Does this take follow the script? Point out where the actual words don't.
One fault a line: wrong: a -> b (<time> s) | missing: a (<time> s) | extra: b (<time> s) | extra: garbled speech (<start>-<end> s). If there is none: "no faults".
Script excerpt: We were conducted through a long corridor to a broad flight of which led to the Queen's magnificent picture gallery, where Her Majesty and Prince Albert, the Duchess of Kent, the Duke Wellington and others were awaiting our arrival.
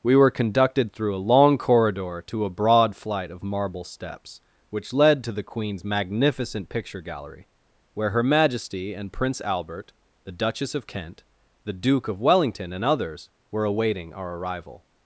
extra: marble steps (3.4 s)
extra: of (12.1 s)